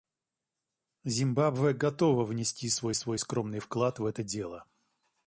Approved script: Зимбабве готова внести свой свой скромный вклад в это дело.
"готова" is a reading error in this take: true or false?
false